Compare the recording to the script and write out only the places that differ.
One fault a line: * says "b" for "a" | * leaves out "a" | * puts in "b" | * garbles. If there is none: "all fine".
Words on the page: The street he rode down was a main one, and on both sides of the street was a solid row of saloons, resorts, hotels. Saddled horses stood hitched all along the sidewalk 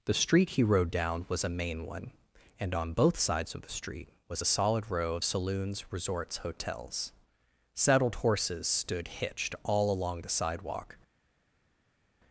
all fine